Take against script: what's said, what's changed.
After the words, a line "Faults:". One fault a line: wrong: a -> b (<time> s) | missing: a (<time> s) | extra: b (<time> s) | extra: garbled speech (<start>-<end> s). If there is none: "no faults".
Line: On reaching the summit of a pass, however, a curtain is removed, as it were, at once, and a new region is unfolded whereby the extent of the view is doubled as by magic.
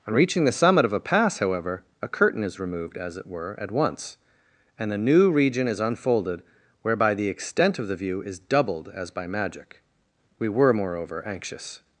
On reaching the summit of a pass, however, a curtain is removed, as it were, at once, and a new region is unfolded whereby the extent of the view is doubled as by magic. We were, moreover, anxious
Faults:
extra: We were moreover anxious (10.4 s)